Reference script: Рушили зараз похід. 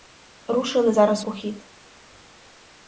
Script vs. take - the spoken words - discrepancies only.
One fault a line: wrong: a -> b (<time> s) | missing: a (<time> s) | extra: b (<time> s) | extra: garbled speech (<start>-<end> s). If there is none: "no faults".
no faults